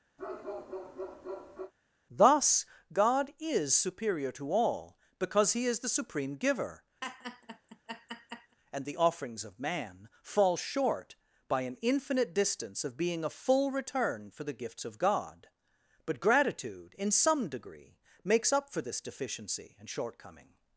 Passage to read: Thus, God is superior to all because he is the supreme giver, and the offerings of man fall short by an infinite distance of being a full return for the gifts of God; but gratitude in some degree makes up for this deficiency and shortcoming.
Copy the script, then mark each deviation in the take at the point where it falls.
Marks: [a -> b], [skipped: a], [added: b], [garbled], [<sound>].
[bark] Thus, God is superior to all because he is the supreme giver, [laugh] and the offerings of man fall short by an infinite distance of being a full return for the gifts of God; but gratitude in some degree makes up for this deficiency and shortcoming.